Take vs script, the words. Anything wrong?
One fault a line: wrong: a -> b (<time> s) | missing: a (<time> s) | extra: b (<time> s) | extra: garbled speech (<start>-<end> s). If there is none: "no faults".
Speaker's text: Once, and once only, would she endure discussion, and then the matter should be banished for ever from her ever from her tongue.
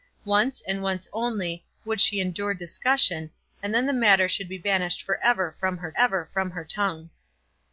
no faults